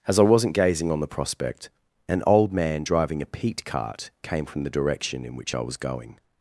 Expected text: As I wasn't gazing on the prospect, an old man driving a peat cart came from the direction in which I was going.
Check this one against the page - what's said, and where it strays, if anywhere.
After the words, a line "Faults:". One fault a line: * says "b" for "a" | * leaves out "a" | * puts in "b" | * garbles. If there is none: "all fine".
As I wasn't gazing on the prospect, an old man driving a peat cart came from the direction in which I was going.
Faults:
all fine